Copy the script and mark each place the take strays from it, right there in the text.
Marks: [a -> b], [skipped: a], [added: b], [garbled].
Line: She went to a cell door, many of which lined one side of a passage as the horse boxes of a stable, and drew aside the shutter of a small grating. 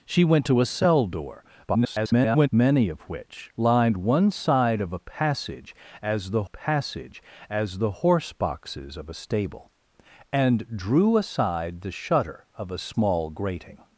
She went to a cell door, [garbled] many of which lined one side of a passage as the [added: passage as the] horse boxes of a stable, and drew aside the shutter of a small grating.